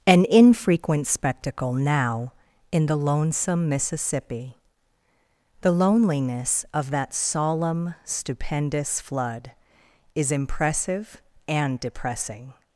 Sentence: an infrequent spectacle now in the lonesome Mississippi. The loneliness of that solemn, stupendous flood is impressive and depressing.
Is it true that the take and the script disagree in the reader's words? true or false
false